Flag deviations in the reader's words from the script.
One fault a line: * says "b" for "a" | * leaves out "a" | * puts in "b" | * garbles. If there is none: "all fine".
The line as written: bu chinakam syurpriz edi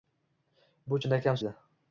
* leaves out "syurpriz"